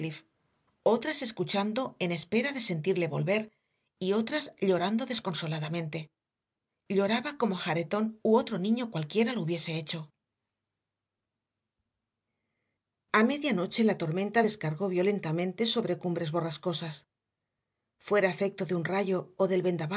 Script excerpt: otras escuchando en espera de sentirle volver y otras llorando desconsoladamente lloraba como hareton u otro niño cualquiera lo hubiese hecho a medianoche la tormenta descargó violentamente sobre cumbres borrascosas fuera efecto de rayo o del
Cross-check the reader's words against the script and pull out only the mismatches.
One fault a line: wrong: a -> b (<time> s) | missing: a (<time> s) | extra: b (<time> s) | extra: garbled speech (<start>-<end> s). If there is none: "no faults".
extra: un (18.7 s)